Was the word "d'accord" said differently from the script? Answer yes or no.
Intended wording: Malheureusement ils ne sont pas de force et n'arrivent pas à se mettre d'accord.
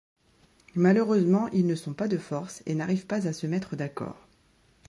no